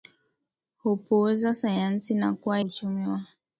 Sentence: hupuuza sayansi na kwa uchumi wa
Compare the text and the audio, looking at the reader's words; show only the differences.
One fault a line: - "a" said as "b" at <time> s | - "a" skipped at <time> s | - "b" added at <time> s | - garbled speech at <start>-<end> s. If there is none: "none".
none